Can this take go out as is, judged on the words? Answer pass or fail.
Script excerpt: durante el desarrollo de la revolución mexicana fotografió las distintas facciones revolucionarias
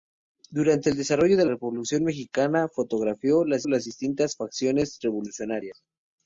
fail